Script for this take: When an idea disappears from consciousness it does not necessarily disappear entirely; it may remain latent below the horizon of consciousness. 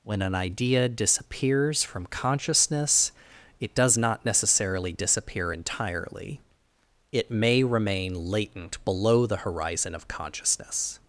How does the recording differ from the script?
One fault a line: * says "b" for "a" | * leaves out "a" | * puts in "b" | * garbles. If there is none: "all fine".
all fine